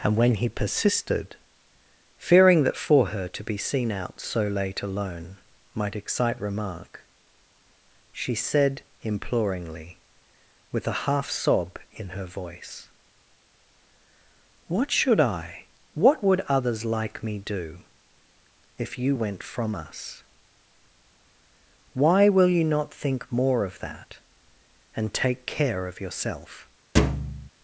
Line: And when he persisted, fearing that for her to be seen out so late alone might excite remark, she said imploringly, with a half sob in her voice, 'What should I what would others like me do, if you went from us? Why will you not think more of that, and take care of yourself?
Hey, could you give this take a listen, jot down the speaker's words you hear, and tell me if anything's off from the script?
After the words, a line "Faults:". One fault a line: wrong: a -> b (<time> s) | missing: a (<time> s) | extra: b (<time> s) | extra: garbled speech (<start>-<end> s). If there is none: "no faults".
And when he persisted, fearing that for her to be seen out so late alone might excite remark, she said imploringly, with a half sob in her voice, 'What should I what would others like me do, if you went from us? Why will you not think more of that, and take care of yourself?
Faults:
no faults